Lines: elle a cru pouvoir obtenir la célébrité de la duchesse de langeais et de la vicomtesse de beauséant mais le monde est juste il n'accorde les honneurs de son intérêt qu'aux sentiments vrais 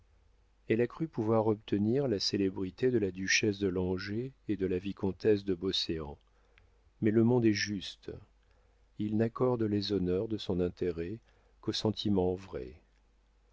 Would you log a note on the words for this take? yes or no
no